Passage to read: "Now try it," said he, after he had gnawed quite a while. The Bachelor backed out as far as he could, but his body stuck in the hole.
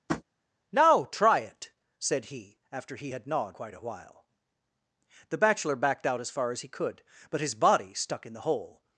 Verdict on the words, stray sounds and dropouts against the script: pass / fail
fail